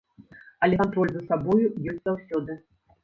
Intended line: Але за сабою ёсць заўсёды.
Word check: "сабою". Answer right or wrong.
right